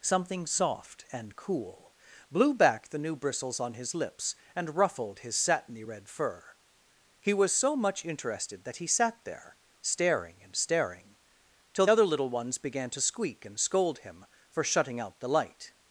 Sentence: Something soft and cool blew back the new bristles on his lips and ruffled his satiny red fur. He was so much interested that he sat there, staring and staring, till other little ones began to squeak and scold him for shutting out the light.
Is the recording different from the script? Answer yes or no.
no